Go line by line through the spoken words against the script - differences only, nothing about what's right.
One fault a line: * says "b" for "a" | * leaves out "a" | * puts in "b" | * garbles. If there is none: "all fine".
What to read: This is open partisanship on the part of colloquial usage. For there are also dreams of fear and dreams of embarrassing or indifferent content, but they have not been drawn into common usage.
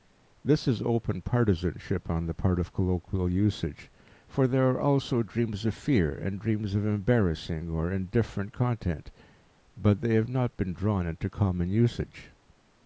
all fine